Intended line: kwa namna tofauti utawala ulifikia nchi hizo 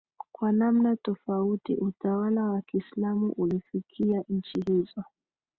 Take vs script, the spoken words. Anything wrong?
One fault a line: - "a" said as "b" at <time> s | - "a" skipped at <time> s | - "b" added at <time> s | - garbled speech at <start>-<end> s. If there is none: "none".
- "wa kiislamu" added at 2.4 s